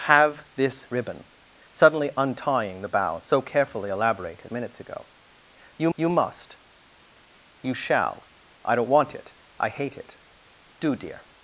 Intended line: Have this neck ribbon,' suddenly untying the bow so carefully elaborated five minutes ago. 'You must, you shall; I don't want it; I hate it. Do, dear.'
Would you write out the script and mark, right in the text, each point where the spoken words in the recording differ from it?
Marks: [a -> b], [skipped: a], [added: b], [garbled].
Have this [skipped: neck] ribbon,' suddenly untying the bow so carefully elaborated [skipped: five] minutes ago. 'You [added: you] must, you shall; I don't want it; I hate it. Do, dear.'